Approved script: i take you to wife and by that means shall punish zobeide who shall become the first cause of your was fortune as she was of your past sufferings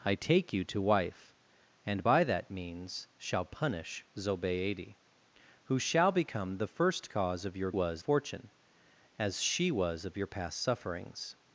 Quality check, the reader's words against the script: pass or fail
pass